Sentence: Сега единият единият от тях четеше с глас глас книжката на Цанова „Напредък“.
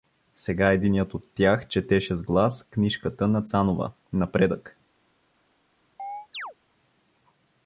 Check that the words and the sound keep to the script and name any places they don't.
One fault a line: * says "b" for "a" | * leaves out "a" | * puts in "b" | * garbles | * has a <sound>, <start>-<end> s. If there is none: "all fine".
* leaves out "единият"
* leaves out "глас"
* has a chirp, 6.0-6.5 s